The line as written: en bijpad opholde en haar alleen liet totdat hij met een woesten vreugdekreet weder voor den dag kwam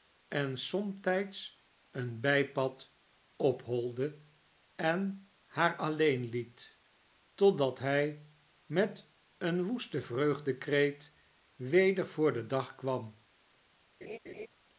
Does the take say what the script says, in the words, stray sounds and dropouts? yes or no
no